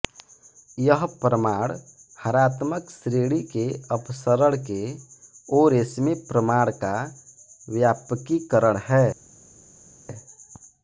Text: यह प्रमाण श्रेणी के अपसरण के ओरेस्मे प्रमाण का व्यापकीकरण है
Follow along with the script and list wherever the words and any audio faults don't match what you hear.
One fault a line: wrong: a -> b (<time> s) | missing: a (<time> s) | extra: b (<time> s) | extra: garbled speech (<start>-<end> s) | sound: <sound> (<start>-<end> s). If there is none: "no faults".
extra: हरात्मक (2.2 s)